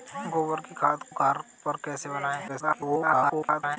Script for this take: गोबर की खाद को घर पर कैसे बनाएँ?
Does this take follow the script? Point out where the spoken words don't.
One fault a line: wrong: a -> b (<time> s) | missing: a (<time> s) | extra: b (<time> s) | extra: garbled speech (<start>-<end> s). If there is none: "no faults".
missing: को (1.0 s)
extra: garbled speech (2.5-3.8 s)